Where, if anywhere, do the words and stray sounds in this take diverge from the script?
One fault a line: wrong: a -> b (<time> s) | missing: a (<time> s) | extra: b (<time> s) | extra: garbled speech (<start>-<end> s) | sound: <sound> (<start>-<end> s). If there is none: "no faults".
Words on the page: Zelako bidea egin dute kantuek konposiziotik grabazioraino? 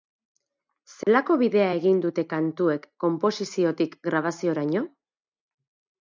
sound: dropout (1.0-1.1 s)